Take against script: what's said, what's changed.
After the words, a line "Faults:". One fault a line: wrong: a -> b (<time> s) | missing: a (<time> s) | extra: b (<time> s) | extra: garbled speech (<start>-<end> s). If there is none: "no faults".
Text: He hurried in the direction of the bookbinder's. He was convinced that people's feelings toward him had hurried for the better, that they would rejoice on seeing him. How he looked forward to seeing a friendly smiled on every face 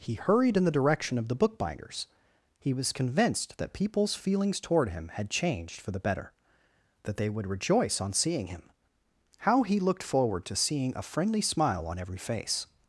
He hurried in the direction of the bookbinder's. He was convinced that people's feelings toward him had changed for the better, that they would rejoice on seeing him. How he looked forward to seeing a friendly smile on every face
Faults:
wrong: hurried -> changed (5.3 s)
wrong: smiled -> smile (11.4 s)